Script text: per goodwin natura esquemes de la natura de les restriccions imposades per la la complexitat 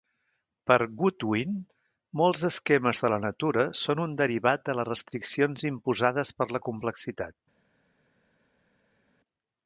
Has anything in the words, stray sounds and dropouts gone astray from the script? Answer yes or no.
yes